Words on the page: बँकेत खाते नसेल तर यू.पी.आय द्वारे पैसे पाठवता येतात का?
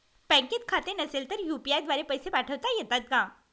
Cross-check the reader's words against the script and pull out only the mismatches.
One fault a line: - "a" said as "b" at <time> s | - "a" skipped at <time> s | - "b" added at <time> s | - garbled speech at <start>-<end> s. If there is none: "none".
none